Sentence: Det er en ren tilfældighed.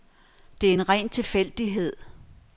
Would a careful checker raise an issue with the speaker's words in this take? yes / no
no